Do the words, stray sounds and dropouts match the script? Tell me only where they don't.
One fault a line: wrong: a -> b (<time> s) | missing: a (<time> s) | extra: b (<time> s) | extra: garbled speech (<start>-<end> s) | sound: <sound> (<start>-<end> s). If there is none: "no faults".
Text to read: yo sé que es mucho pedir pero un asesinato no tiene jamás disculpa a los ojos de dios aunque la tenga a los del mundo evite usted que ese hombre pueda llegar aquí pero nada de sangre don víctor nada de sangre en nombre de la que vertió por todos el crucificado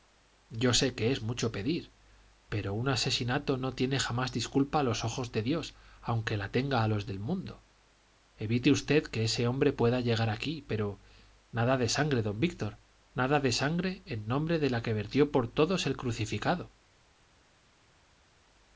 no faults